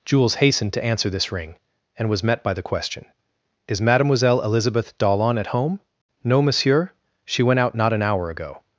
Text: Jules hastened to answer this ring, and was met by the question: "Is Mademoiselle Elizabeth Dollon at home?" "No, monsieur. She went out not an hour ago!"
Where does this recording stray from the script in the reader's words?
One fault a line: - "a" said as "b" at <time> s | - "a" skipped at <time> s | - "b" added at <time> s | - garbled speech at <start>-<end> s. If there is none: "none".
none